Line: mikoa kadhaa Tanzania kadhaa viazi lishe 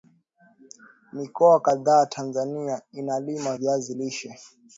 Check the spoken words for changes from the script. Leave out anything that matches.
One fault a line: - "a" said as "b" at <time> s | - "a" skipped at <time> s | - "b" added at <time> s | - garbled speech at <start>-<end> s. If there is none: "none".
- "kadhaa" said as "inalima" at 2.9 s